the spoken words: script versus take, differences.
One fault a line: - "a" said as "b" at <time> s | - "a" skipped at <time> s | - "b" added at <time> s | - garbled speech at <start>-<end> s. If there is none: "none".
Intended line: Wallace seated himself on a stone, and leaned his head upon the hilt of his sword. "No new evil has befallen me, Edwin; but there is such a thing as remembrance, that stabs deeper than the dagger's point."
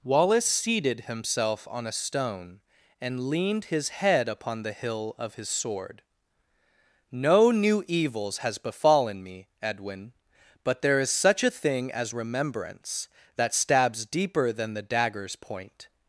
- "hilt" said as "hill" at 4.7 s
- "evil" said as "evils" at 7.9 s